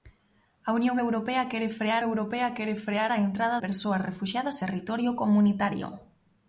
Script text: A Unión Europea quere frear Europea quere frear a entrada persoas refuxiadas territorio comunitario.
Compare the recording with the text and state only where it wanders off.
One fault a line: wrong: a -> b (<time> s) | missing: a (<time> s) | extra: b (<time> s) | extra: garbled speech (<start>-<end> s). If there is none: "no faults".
no faults